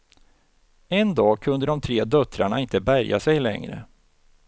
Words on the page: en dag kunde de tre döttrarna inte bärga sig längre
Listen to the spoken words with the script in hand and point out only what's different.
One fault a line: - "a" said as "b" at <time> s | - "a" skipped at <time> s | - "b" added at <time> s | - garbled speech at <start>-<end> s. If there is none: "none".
none